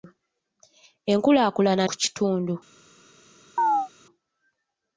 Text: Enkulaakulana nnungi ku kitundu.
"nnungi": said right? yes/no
no